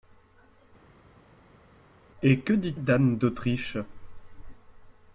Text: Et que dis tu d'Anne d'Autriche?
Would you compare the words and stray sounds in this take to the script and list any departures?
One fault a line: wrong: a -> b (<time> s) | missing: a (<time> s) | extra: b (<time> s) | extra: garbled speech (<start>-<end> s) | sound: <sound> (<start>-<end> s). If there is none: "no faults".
missing: tu (2.7 s)